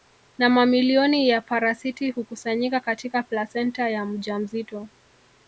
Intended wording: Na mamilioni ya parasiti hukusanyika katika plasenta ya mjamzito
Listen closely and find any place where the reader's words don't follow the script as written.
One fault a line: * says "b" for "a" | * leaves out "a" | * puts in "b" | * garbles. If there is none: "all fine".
all fine